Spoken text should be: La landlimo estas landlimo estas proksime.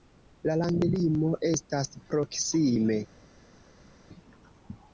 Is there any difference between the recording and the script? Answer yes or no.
yes